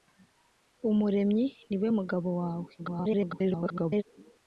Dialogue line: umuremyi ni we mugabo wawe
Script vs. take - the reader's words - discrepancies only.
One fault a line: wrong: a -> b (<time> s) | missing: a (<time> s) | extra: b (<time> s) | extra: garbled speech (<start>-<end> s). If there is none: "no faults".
extra: garbled speech (2.8-4.0 s)